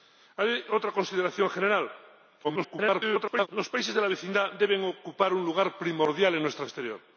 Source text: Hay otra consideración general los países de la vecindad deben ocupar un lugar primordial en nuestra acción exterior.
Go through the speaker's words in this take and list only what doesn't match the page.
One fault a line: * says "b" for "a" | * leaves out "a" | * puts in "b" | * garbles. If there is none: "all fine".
* garbles
* leaves out "acción"